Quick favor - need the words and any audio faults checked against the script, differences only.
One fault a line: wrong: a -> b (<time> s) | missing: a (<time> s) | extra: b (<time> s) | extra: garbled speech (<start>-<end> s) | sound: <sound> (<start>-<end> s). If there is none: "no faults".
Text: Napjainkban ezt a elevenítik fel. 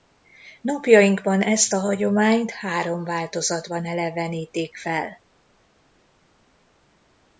extra: hagyományt három változatban (1.8 s)